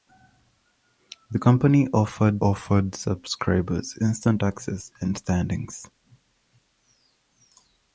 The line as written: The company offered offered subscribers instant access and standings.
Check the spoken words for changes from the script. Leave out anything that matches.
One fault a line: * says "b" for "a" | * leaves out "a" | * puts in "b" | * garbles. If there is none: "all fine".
all fine